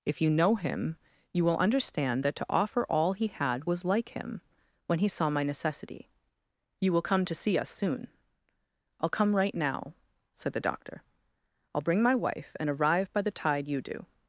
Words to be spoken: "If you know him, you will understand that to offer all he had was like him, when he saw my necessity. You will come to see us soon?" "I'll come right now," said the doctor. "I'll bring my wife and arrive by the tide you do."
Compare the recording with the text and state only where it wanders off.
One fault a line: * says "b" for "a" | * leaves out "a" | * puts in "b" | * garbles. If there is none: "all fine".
all fine